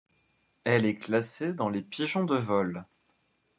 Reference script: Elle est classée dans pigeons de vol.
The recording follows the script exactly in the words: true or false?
false